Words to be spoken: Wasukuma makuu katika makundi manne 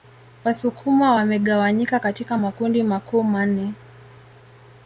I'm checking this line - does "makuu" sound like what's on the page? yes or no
no